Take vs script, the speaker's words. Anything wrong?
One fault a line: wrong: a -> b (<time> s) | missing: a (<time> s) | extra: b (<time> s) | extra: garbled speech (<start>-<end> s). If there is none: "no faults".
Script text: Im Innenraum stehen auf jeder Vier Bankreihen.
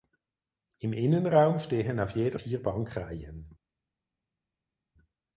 no faults